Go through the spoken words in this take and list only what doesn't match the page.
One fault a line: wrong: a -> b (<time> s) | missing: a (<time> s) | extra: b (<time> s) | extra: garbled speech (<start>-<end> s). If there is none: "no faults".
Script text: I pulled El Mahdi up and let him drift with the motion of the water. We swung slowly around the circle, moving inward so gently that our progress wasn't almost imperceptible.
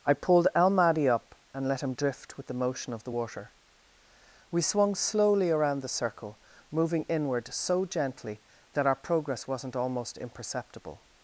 no faults